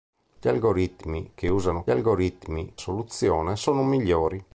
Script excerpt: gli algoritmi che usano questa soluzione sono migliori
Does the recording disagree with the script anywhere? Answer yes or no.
yes